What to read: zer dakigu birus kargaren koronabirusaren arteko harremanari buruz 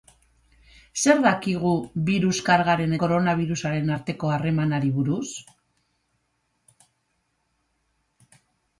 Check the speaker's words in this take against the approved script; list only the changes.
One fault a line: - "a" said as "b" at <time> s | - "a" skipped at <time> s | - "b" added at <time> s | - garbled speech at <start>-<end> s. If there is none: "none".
none